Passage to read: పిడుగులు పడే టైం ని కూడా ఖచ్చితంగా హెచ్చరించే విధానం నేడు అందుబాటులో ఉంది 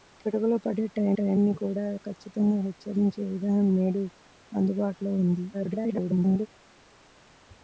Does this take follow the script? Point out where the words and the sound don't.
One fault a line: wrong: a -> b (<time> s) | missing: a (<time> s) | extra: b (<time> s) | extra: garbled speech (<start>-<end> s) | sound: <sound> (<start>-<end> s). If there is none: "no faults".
extra: టైం (1.2 s)
extra: garbled speech (5.5-6.5 s)